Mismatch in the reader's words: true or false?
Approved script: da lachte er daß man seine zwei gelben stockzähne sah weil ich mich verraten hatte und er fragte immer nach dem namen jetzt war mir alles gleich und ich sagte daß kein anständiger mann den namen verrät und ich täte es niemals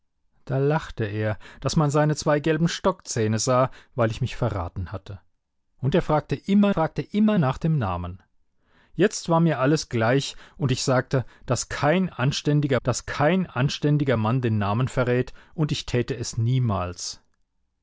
true